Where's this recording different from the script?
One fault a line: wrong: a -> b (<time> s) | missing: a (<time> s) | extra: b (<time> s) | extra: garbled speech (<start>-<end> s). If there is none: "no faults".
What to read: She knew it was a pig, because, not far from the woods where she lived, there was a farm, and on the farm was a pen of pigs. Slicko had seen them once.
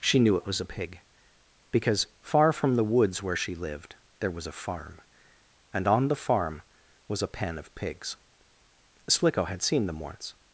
missing: not (2.1 s)